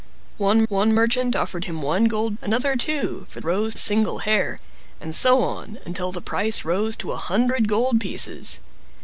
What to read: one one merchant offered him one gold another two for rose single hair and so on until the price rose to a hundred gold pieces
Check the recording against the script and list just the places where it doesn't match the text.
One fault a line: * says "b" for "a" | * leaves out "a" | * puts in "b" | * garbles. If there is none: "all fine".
all fine